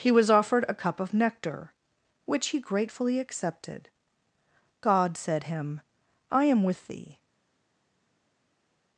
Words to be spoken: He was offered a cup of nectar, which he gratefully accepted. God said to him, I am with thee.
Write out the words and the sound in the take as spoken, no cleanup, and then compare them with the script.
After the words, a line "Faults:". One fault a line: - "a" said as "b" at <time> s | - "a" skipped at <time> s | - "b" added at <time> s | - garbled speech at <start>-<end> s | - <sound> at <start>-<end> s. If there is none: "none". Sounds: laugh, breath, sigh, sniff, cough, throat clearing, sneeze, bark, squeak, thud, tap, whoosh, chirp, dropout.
He was offered a cup of nectar, which he gratefully accepted. God said him, I am with thee.
Faults:
- "to" skipped at 5.4 s